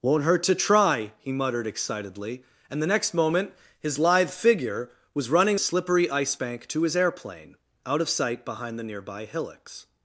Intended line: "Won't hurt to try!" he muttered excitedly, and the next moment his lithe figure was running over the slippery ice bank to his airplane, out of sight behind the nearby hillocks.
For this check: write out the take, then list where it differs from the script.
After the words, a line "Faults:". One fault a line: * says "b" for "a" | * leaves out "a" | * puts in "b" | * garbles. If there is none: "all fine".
"Won't hurt to try!" he muttered excitedly, and the next moment his lithe figure was running slippery ice bank to his airplane, out of sight behind the nearby hillocks.
Faults:
* leaves out "over the"